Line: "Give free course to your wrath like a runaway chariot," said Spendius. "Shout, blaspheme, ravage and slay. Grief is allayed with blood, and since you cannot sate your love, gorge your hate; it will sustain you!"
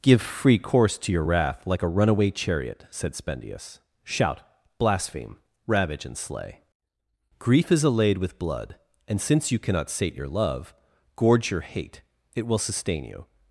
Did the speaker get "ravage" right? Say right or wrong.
right